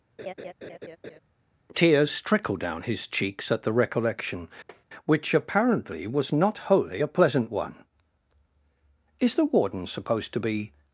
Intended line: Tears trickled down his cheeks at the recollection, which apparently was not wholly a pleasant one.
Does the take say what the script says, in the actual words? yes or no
no